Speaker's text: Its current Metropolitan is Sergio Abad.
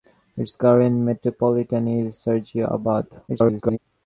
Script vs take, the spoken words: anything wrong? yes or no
yes